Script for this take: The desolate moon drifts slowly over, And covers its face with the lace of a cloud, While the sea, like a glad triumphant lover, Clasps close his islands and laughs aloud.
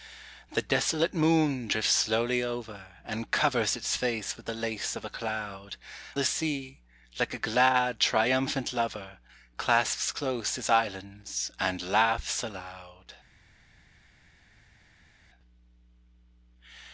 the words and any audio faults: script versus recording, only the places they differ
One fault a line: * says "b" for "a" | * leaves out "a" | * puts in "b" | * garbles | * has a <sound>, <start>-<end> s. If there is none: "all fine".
* leaves out "While"